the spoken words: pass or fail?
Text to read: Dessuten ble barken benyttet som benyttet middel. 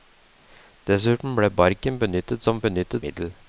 pass